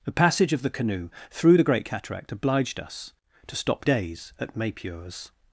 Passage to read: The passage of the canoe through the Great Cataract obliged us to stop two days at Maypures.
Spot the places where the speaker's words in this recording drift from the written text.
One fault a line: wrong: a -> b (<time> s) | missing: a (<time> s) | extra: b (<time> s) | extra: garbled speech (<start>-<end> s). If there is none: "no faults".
missing: two (3.8 s)